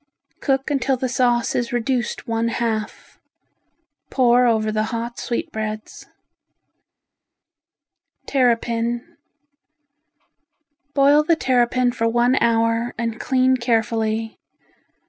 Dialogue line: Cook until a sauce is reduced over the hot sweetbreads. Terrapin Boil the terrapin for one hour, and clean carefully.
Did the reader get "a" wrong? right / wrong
wrong